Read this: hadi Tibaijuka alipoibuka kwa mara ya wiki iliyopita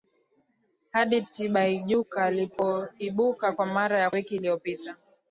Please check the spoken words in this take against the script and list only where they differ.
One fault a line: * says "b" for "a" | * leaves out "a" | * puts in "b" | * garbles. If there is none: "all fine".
all fine